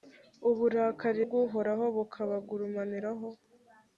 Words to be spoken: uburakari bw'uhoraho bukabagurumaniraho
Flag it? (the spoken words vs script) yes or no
no